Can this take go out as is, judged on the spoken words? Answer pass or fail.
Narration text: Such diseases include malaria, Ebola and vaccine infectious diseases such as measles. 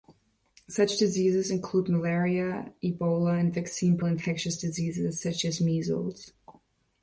pass